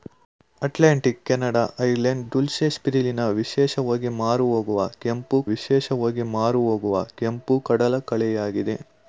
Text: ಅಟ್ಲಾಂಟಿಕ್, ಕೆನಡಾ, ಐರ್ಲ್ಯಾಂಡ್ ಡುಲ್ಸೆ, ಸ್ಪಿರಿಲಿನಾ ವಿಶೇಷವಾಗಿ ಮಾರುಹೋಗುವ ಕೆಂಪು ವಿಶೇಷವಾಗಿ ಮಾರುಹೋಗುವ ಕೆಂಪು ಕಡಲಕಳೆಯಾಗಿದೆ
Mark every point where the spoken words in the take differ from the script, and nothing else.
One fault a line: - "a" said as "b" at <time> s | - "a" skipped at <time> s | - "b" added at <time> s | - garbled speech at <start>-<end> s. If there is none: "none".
none